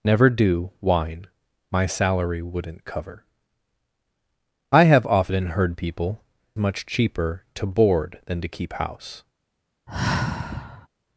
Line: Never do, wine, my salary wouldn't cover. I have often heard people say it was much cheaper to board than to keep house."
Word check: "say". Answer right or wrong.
wrong